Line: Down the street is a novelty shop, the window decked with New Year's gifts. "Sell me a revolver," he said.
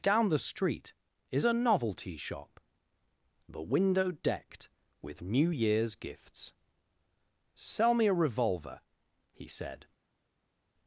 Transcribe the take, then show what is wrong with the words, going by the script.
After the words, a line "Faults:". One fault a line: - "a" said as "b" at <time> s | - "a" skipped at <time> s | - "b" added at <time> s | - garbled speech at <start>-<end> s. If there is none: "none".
Down the street is a novelty shop, the window decked with New Year's gifts. "Sell me a revolver," he said.
Faults:
none